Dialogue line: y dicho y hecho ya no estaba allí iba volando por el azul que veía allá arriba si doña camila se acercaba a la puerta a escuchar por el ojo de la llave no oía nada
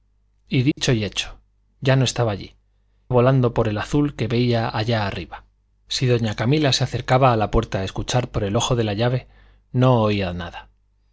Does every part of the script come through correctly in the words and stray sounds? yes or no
no